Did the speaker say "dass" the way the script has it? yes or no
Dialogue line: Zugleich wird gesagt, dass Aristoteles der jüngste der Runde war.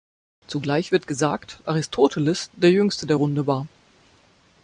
no